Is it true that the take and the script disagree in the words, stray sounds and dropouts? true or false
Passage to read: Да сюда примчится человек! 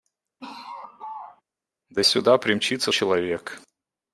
true